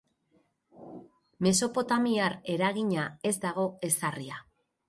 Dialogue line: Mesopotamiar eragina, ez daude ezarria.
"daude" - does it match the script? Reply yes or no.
no